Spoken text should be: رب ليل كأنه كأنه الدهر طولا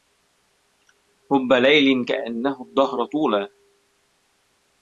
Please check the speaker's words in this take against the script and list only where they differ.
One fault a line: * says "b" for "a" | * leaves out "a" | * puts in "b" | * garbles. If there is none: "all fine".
* leaves out "كأنه"